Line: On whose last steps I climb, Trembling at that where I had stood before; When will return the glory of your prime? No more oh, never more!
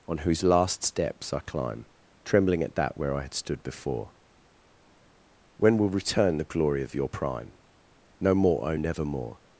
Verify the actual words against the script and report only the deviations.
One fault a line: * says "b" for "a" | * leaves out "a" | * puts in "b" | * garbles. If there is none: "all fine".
all fine